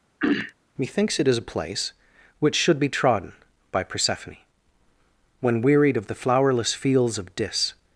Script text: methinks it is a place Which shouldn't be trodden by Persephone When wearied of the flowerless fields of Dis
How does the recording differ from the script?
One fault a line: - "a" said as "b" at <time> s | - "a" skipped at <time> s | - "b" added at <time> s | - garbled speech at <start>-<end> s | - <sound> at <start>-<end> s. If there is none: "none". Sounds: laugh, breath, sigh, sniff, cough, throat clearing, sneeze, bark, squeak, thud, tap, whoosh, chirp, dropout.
- throat clearing at 0.2-0.5 s
- "shouldn't" said as "should" at 2.5 s